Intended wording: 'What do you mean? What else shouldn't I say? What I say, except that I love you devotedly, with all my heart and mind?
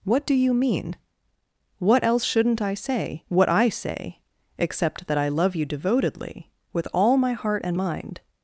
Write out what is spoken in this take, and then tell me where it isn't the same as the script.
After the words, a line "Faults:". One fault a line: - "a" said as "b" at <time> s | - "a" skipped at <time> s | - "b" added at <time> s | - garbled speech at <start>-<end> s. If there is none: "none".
'What do you mean? What else shouldn't I say? What I say, except that I love you devotedly, with all my heart and mind?
Faults:
none